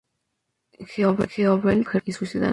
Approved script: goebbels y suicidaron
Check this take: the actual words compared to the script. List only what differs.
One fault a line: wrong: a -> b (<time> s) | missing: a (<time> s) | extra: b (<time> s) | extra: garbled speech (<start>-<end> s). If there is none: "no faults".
no faults